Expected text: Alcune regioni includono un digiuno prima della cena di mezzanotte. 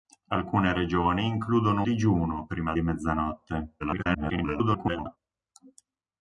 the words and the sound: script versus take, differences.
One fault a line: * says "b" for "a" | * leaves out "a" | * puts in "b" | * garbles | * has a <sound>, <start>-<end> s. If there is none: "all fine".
* leaves out "un"
* leaves out "della cena"
* garbles